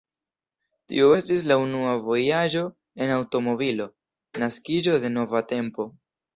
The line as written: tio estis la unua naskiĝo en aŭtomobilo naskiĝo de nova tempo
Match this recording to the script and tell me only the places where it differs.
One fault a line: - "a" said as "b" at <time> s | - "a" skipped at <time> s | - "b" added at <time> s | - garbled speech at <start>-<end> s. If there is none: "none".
- "naskiĝo" said as "vojaĝo" at 2.1 s